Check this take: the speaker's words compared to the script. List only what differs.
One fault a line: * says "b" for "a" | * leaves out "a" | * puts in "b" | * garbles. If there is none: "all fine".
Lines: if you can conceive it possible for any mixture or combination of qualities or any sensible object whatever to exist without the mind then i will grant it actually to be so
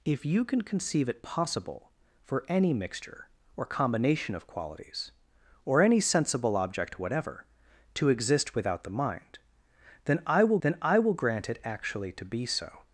* puts in "then i will"